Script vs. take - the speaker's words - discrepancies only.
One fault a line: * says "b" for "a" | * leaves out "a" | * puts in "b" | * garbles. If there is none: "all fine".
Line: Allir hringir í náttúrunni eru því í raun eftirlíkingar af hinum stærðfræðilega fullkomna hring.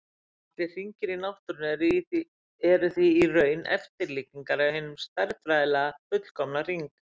all fine